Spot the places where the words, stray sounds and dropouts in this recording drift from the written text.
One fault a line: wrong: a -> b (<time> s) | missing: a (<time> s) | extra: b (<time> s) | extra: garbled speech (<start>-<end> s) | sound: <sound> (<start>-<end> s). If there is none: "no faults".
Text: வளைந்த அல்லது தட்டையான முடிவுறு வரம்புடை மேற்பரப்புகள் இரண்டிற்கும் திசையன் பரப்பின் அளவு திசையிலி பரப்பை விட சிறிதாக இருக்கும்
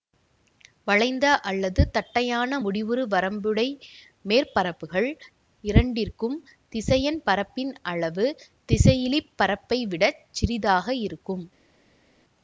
no faults